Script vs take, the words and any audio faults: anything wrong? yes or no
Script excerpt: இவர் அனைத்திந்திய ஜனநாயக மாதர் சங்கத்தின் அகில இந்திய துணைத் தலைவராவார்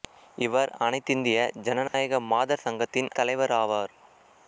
yes